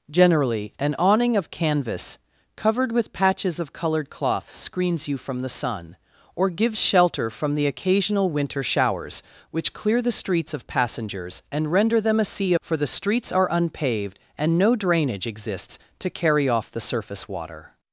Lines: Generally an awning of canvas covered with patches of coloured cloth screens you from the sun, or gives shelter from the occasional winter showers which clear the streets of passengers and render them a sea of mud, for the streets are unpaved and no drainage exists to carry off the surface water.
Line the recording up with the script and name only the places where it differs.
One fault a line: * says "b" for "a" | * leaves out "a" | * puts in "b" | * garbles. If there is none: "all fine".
* leaves out "of mud"